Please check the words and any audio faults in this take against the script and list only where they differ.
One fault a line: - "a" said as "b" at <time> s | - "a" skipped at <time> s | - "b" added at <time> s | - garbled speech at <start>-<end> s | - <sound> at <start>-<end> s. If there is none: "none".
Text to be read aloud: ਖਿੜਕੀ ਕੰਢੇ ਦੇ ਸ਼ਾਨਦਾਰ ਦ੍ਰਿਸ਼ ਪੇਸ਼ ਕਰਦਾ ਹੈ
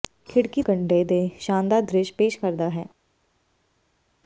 none